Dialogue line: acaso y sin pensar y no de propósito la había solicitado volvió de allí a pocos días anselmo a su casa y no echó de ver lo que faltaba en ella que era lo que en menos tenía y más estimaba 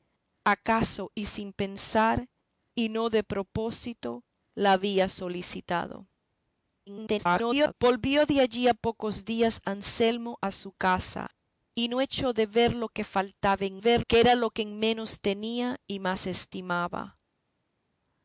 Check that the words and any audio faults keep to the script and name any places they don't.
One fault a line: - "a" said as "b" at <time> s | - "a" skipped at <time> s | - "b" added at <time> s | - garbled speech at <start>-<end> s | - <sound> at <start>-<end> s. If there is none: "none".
- garbled speech at 6.9-7.7 s
- "ella" said as "ver" at 13.8 s